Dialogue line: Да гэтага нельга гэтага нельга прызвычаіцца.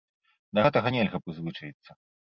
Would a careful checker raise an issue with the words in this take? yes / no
yes